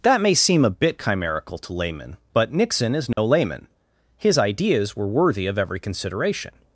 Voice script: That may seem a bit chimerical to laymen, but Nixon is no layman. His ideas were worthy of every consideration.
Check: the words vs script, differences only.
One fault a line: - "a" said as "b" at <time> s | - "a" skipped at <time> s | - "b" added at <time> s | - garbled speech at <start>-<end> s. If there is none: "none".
none